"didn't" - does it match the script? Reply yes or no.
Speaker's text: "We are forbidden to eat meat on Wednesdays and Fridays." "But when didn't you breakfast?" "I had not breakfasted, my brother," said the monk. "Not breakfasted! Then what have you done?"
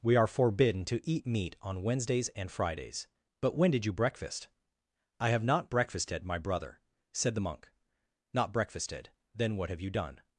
no